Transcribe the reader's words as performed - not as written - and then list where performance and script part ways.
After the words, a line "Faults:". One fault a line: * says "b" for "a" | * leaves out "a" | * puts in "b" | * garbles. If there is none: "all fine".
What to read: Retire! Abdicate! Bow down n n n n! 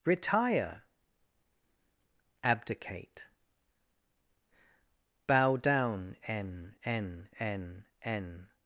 Retire! Abdicate! Bow down n n n n!
Faults:
all fine